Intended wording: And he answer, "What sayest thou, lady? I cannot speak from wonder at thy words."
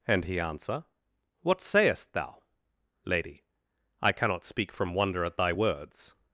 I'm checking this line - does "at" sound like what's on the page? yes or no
yes